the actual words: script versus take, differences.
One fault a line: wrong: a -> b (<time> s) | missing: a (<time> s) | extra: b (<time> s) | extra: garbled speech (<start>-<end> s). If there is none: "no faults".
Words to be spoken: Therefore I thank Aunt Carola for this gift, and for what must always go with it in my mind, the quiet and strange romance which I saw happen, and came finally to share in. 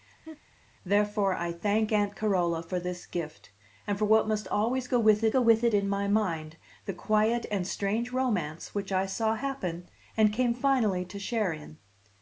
extra: go with it (5.3 s)